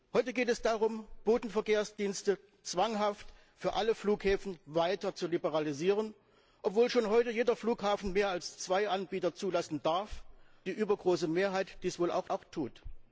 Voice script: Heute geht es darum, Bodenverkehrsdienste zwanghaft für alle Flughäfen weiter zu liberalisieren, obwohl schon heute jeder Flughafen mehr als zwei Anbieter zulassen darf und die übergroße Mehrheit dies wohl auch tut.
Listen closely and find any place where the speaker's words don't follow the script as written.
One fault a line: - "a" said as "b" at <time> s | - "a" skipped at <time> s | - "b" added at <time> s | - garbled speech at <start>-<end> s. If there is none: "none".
- "und" skipped at 10.2 s
- "auch" added at 12.3 s